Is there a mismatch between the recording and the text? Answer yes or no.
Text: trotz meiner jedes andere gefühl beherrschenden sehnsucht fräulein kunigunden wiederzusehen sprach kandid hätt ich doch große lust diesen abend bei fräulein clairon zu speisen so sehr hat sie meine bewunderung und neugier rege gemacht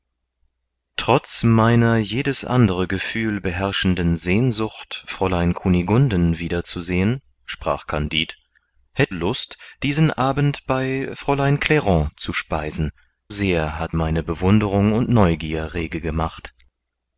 yes